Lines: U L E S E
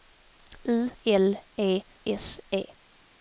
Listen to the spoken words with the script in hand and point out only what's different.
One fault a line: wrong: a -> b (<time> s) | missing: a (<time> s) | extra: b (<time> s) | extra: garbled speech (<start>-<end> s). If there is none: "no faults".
no faults